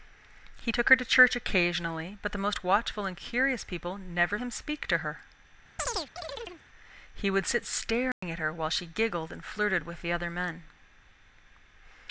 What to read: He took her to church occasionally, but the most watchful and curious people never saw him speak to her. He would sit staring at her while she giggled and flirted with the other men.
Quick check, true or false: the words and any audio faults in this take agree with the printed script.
false